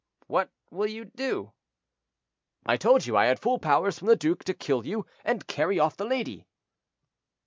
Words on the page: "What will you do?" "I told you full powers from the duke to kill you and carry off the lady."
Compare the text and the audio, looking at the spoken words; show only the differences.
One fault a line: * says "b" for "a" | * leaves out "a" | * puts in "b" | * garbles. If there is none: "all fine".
* puts in "I had"